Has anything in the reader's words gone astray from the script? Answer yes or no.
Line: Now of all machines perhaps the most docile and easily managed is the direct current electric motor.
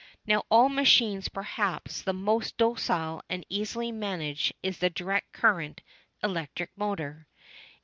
no